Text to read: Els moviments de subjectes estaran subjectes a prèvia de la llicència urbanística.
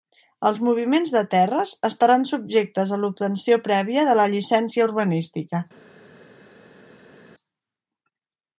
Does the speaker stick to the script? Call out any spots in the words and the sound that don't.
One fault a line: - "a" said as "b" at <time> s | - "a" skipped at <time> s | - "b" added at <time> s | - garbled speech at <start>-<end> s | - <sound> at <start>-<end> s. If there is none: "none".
- "subjectes" said as "terres" at 1.3 s
- "l'obtenció" added at 3.0 s